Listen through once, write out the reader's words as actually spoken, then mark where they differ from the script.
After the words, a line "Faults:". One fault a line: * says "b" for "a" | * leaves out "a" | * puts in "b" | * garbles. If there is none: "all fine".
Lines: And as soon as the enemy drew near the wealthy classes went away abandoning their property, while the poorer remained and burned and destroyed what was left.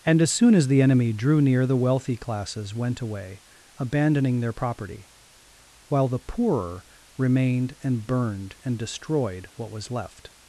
And as soon as the enemy drew near the wealthy classes went away abandoning their property, while the poorer remained and burned and destroyed what was left.
Faults:
all fine